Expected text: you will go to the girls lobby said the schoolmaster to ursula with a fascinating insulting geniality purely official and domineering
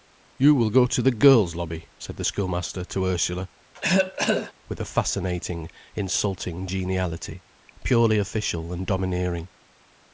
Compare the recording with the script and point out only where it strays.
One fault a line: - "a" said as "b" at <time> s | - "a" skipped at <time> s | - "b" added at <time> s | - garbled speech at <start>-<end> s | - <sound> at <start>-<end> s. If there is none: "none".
- cough at 3.7-4.5 s